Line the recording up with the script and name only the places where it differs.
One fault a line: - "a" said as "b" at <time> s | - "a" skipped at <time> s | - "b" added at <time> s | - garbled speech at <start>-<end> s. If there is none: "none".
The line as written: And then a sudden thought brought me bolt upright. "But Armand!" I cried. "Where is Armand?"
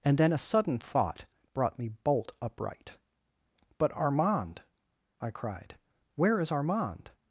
none